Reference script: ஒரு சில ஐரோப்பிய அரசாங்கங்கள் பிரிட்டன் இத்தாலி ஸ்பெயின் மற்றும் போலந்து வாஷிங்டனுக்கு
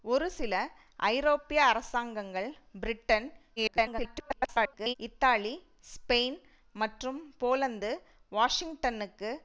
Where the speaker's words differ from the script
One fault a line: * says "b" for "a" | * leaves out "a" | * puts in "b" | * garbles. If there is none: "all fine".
* garbles